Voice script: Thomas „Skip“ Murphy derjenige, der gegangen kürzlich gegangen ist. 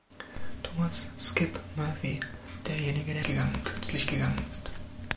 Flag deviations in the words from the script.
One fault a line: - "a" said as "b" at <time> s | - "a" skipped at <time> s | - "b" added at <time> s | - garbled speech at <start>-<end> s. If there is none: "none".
none